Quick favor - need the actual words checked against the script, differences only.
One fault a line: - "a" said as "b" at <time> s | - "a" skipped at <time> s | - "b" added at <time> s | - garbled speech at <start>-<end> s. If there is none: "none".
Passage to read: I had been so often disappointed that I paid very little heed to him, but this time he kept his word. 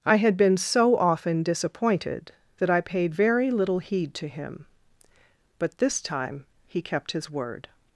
none